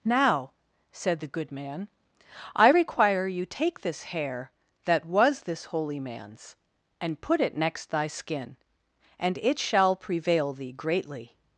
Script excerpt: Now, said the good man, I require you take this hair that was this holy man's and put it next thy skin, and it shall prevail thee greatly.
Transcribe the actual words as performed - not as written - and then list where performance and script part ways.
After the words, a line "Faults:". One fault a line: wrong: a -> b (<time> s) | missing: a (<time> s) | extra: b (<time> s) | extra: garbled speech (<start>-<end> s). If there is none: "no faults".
Now, said the good man, I require you take this hair that was this holy man's and put it next thy skin, and it shall prevail thee greatly.
Faults:
no faults